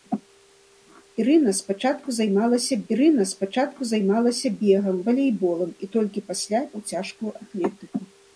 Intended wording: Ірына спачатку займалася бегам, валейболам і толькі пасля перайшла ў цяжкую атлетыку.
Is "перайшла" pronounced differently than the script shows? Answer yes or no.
yes